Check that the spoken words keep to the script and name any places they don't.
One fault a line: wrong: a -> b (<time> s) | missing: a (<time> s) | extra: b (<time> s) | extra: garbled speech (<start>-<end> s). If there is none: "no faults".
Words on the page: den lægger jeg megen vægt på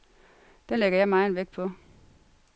no faults